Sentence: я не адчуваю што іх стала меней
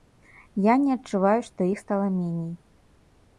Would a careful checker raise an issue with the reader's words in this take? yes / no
no